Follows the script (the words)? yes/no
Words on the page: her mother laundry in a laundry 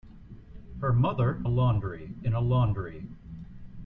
yes